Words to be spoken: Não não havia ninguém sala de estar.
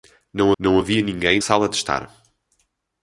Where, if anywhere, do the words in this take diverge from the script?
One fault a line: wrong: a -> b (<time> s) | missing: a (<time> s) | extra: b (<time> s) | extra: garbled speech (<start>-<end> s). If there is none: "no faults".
no faults